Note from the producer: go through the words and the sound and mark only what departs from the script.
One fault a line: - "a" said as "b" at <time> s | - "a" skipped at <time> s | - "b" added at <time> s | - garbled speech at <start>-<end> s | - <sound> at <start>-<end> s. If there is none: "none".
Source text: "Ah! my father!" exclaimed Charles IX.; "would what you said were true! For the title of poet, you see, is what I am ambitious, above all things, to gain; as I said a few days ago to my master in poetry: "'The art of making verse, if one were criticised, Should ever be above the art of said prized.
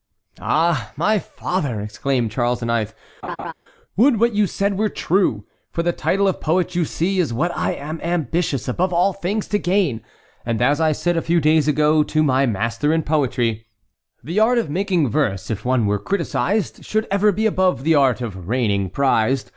- laugh at 3.2-3.5 s
- "and" added at 10.4 s
- "said" said as "reigning" at 18.5 s